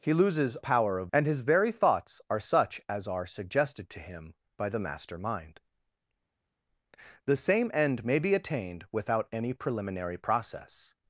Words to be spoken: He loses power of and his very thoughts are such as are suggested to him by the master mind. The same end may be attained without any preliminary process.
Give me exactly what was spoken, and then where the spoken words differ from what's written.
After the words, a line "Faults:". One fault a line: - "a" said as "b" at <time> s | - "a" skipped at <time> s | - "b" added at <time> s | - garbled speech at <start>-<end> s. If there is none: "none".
He loses power of and his very thoughts are such as are suggested to him by the master mind. The same end may be attained without any preliminary process.
Faults:
none